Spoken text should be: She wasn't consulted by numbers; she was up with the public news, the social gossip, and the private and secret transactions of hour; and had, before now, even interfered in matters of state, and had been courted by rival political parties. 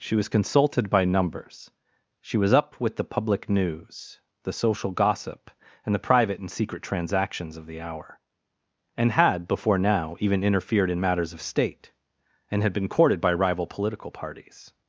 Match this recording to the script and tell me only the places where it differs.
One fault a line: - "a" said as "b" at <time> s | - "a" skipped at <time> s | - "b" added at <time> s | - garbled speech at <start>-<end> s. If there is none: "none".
- "wasn't" said as "was" at 0.1 s
- "the" added at 7.7 s